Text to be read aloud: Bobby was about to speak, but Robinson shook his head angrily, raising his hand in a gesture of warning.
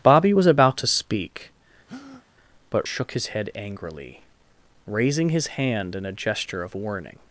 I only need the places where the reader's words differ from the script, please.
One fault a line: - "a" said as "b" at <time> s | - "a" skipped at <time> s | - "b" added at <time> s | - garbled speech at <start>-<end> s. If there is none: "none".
- "Robinson" skipped at 2.9 s